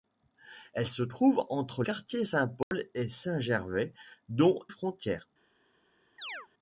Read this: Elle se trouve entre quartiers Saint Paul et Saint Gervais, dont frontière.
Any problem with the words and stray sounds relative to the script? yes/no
yes